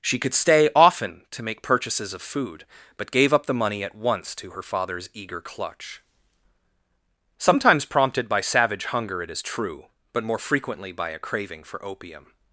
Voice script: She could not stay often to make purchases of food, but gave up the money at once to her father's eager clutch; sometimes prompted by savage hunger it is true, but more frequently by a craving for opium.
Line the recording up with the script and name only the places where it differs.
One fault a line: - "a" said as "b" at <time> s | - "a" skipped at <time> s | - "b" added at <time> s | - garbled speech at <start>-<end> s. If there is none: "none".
- "not" skipped at 0.3 s